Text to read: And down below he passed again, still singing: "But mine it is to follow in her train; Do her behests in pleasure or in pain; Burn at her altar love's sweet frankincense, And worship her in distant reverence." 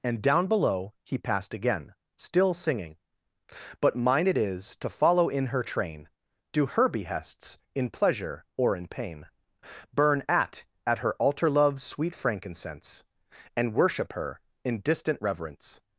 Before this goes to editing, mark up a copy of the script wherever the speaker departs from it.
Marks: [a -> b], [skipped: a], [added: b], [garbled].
And down below he passed again, still singing: "But mine it is to follow in her train; Do her behests in pleasure or in pain; Burn at [added: at] her altar love's sweet frankincense, And worship her in distant reverence."